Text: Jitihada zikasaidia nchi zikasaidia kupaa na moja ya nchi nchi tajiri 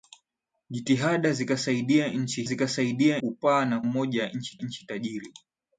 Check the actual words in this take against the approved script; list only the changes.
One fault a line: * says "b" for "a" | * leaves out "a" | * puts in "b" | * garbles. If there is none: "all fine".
all fine